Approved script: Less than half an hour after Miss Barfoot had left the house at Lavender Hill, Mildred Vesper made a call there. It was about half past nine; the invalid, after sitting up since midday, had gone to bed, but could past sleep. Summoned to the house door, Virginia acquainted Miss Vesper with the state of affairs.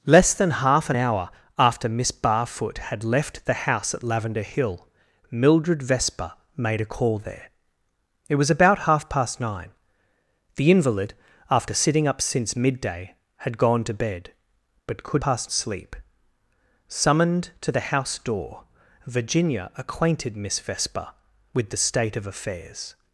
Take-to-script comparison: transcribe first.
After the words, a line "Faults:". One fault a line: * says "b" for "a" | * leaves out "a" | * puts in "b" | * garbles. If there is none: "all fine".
Less than half an hour after Miss Barfoot had left the house at Lavender Hill, Mildred Vesper made a call there. It was about half past nine; the invalid, after sitting up since midday, had gone to bed, but could past sleep. Summoned to the house door, Virginia acquainted Miss Vesper with the state of affairs.
Faults:
all fine